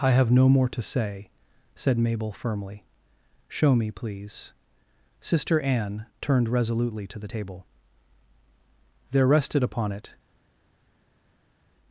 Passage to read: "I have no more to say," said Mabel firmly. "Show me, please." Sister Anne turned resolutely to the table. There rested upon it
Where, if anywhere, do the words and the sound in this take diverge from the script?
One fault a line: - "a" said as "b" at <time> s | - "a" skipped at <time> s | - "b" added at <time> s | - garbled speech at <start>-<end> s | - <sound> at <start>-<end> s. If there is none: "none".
none